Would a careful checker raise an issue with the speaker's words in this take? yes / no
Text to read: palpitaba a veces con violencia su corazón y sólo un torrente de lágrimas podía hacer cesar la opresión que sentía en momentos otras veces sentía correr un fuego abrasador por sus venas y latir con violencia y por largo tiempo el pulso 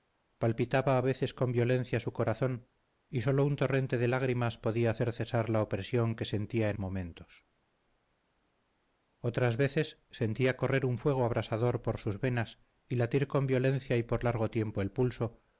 no